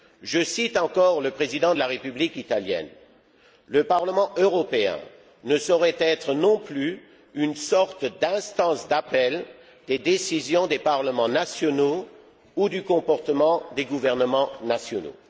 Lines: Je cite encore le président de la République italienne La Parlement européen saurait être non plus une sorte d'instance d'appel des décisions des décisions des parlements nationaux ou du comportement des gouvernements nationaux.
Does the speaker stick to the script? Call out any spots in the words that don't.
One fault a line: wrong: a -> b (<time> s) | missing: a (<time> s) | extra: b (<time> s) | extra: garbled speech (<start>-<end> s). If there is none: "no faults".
wrong: La -> Le (3.7 s)
extra: ne (5.4 s)
missing: décisions des (10.8 s)